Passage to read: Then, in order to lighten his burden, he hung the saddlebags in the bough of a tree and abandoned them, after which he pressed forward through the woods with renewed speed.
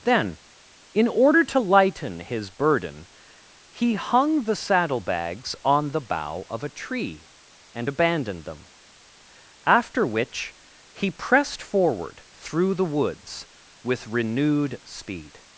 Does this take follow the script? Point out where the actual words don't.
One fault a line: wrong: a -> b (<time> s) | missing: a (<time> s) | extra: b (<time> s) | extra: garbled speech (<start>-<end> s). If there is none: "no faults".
wrong: in -> on (5.6 s)